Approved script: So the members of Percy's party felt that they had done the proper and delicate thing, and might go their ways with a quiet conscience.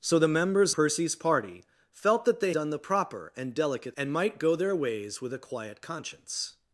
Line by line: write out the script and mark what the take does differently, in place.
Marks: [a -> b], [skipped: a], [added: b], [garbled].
So the members [skipped: of] Percy's party felt that they [skipped: had] done the proper and delicate [skipped: thing,] and might go their ways with a quiet conscience.